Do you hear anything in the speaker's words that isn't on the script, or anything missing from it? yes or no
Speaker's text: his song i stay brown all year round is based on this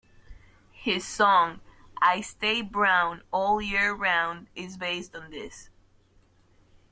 no